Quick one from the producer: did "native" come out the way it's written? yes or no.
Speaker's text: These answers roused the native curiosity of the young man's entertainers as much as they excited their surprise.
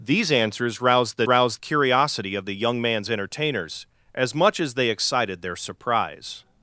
no